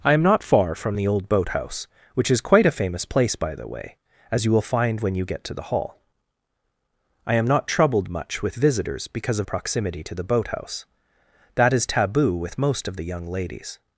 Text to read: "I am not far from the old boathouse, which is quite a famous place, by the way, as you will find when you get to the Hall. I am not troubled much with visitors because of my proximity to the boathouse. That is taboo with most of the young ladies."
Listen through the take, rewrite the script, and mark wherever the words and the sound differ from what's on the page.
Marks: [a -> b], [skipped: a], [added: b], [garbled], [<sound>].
"I am not far from the old boathouse, which is quite a famous place, by the way, as you will find when you get to the Hall. I am not troubled much with visitors because of [skipped: my] proximity to the boathouse. That is taboo with most of the young ladies."